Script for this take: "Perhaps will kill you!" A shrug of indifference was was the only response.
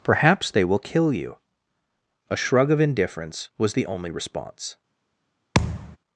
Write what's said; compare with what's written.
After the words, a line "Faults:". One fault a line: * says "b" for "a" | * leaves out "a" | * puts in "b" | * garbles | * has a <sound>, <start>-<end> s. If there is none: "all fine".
"Perhaps they will kill you!" A shrug of indifference was the only response.
Faults:
* puts in "they"
* leaves out "was"
* has a thud, 5.5-6.0 s